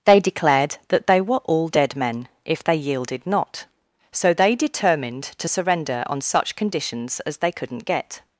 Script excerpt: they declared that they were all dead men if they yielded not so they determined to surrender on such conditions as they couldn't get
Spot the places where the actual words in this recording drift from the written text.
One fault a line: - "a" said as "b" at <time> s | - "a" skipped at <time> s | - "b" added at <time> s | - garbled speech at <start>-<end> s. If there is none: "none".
none